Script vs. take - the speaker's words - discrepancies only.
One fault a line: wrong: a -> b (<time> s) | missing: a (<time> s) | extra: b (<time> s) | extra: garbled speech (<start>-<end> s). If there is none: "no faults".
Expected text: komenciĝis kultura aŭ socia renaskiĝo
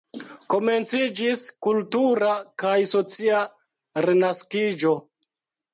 wrong: aŭ -> kaj (2.6 s)